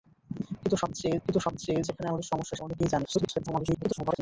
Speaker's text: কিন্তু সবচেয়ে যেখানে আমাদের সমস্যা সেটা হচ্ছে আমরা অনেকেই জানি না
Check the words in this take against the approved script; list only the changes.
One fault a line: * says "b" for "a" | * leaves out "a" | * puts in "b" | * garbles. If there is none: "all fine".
* puts in "কিন্তু সবচেয়ে"
* leaves out "সেটা হচ্ছে আমরা"
* garbles